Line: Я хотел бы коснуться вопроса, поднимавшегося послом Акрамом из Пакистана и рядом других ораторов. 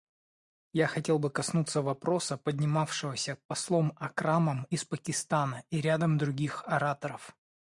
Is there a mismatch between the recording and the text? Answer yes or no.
no